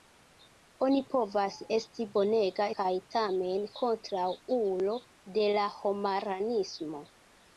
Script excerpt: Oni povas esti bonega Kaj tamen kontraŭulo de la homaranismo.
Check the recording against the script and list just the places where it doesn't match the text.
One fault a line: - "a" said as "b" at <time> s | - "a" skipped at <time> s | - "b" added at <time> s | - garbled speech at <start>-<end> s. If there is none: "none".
none